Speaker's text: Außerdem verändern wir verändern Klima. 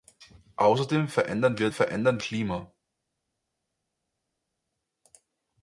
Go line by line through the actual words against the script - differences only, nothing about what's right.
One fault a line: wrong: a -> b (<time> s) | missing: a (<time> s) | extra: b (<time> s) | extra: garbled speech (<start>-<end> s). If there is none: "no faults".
no faults